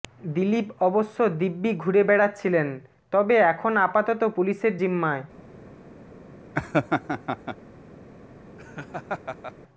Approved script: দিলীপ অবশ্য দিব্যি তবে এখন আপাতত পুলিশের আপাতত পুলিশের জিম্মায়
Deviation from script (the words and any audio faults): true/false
true